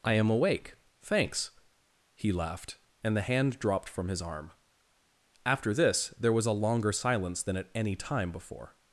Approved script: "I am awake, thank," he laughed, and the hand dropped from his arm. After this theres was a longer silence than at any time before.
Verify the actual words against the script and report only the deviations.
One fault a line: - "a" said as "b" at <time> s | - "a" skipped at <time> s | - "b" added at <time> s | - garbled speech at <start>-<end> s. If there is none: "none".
- "thank" said as "thanks" at 1.0 s
- "theres" said as "there" at 6.1 s